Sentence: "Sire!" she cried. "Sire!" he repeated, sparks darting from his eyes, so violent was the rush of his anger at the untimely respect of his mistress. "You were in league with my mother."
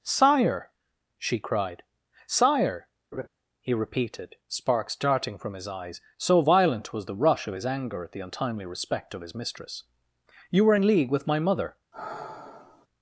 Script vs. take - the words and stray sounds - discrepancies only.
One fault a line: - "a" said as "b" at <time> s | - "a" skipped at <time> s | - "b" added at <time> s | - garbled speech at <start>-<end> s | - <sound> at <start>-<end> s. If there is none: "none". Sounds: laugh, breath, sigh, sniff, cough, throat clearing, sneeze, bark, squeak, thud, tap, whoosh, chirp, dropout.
- laugh at 3.1-3.3 s
- sigh at 11.9-12.9 s